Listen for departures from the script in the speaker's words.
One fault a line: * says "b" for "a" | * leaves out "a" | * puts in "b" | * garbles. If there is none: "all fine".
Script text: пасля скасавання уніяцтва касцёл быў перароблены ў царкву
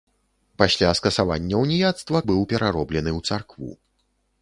* leaves out "касцёл"